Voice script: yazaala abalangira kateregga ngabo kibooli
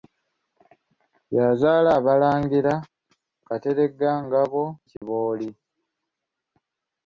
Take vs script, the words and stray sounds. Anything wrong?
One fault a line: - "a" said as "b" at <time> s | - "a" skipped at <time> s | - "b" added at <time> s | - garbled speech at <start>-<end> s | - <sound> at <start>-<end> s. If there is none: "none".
- dropout at 5.0-5.0 s